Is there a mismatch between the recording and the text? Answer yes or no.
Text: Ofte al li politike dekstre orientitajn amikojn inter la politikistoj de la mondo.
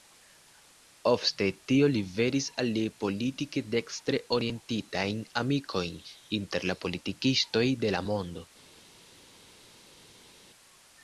yes